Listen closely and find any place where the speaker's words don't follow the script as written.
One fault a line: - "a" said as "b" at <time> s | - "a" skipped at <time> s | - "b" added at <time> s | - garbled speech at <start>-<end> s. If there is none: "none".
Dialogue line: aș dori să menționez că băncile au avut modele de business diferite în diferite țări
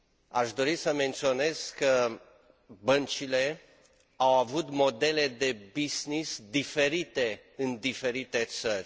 none